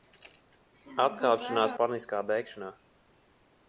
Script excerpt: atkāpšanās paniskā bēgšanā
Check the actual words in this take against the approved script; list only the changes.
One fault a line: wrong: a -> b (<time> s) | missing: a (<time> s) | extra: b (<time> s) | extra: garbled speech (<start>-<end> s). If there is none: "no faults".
no faults